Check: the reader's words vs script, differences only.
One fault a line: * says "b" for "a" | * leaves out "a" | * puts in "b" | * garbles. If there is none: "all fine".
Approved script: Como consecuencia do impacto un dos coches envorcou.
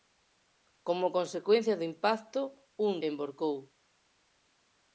* leaves out "dos coches"